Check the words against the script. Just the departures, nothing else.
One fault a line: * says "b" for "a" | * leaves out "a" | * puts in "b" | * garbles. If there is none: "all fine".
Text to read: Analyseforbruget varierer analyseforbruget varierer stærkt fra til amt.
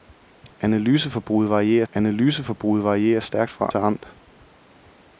all fine